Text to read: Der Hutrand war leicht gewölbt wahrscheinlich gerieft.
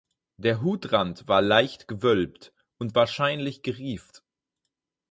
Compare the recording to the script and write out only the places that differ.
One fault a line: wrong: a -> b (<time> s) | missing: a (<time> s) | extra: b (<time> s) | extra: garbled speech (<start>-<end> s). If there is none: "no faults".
extra: und (2.8 s)